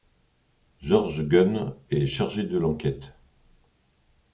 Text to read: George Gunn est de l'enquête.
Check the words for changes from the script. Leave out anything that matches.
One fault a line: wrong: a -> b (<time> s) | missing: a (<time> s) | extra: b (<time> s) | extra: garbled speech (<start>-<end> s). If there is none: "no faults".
extra: chargé (2.1 s)